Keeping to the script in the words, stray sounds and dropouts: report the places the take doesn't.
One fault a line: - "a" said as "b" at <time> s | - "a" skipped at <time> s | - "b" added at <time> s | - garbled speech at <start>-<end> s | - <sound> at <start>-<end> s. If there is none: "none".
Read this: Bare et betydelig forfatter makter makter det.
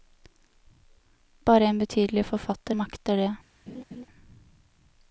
- "et" said as "en" at 1.6 s
- "makter" skipped at 3.2 s
- laugh at 3.7-4.0 s